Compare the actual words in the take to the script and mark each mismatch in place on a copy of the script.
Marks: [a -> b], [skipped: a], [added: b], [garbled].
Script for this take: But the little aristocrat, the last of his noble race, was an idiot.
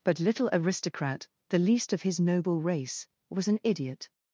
But [skipped: the] little aristocrat, the [last -> least] of his noble race, was an idiot.